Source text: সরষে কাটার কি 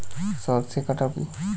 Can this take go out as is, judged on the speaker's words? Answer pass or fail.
pass